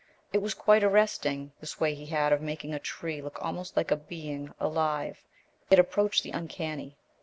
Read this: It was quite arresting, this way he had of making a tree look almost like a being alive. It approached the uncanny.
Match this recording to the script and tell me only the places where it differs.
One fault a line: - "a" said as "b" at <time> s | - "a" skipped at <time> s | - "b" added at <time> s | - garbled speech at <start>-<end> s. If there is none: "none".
none